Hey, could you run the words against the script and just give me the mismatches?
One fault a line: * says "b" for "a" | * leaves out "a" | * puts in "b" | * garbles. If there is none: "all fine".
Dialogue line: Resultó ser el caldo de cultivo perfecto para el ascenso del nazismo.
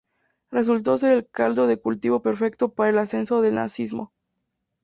all fine